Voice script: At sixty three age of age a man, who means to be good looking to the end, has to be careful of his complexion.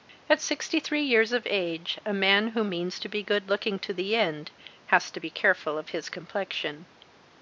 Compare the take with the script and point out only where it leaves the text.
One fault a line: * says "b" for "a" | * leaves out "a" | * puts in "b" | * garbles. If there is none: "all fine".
* says "years" for "age"